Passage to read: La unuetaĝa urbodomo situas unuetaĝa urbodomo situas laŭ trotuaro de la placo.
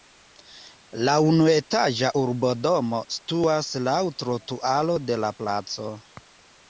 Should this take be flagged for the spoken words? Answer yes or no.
yes